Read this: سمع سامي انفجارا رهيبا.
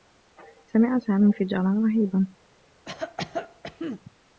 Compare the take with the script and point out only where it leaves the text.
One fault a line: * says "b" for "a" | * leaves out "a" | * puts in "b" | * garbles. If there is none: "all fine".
all fine